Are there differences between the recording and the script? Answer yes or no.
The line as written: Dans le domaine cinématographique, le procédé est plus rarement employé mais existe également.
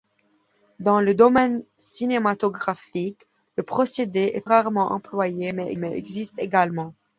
yes